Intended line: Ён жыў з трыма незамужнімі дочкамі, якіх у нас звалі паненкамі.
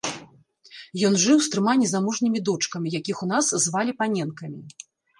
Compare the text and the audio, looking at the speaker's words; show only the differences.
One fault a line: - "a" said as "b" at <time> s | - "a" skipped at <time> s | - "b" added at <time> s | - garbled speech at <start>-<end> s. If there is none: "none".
none